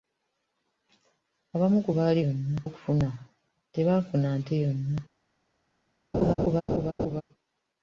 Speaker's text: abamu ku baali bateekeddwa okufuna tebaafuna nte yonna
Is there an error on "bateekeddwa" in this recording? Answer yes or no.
yes